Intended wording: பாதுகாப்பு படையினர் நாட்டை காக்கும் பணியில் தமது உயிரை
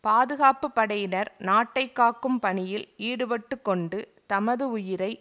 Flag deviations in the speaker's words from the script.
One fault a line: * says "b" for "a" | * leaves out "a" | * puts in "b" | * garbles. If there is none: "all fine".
* puts in "ஈடுபட்டுக்கொண்டு"